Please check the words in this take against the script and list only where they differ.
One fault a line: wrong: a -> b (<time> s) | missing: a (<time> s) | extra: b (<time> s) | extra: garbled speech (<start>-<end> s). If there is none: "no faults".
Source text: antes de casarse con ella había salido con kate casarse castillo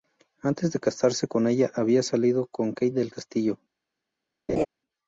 wrong: casarse -> del (2.9 s)